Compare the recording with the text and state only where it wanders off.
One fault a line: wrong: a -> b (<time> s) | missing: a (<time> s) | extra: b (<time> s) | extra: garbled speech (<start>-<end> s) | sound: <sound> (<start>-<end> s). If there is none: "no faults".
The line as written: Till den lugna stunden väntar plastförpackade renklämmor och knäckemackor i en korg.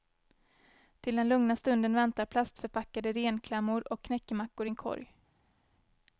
no faults